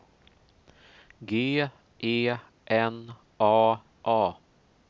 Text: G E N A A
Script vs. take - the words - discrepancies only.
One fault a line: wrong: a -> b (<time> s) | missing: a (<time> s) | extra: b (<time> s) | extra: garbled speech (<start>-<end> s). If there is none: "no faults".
no faults